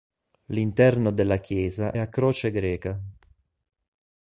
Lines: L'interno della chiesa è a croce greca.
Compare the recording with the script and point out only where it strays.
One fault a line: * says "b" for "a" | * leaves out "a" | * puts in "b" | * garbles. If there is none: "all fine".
* leaves out "è"